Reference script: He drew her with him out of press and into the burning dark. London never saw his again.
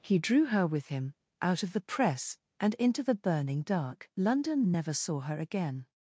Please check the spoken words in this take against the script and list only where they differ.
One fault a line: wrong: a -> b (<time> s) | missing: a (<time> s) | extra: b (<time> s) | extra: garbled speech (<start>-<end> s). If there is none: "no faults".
extra: the (1.7 s)
wrong: his -> her (5.2 s)